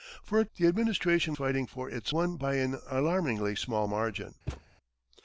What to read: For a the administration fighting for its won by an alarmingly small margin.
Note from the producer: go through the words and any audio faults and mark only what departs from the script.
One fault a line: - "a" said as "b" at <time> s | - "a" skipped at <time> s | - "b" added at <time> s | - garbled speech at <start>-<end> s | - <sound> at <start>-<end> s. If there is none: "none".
- thud at 4.5-4.6 s